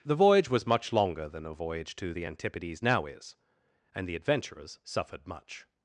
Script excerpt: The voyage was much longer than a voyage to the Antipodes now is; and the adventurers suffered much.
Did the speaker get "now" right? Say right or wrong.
right